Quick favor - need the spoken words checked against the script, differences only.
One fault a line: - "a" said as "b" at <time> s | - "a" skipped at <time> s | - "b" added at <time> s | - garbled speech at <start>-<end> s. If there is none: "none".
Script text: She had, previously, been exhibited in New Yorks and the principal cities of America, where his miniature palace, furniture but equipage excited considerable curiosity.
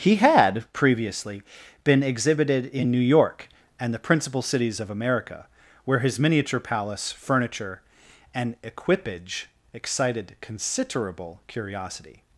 - "She" said as "He" at 0.0 s
- "Yorks" said as "York" at 3.0 s
- "but" said as "and" at 8.3 s